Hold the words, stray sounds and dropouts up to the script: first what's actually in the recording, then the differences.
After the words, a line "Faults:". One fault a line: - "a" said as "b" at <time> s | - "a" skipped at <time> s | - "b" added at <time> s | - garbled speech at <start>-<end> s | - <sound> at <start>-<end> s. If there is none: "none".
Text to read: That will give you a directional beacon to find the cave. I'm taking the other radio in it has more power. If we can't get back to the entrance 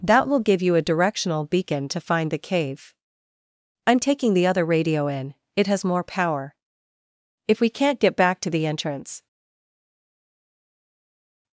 That will give you a directional beacon to find the cave. I'm taking the other radio in it has more power. If we can't get back to the entrance
Faults:
none